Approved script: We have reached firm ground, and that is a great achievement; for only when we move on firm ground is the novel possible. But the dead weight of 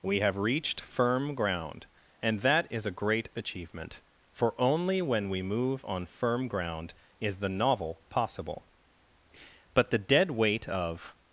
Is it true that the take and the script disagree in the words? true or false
false